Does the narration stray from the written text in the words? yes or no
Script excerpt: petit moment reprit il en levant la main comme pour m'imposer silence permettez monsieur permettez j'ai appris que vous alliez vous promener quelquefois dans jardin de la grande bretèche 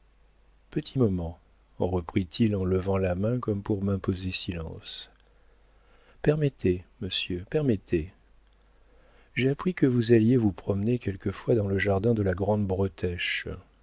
yes